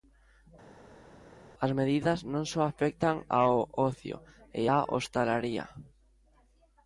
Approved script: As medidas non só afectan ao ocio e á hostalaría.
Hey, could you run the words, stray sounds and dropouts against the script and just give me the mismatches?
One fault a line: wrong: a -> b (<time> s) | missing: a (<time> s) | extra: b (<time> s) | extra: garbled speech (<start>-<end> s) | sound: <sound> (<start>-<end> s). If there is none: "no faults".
no faults